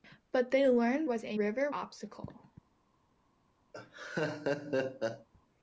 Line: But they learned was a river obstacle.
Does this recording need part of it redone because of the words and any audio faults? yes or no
yes